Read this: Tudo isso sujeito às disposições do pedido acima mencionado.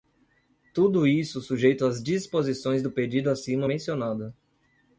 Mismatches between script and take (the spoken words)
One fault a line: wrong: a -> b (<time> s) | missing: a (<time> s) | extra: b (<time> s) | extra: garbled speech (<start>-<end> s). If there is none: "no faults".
no faults